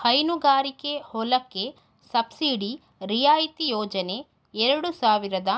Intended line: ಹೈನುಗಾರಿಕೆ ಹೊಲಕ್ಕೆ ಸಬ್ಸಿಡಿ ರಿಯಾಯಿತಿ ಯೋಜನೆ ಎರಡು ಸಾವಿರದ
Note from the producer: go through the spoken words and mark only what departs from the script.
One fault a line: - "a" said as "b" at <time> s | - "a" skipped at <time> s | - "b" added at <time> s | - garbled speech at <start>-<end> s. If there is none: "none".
none